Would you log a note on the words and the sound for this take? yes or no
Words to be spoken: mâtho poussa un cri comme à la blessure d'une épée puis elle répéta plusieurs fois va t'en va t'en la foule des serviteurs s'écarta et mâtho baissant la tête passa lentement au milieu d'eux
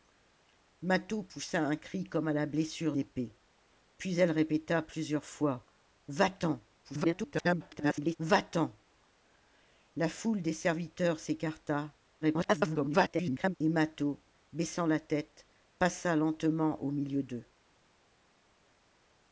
yes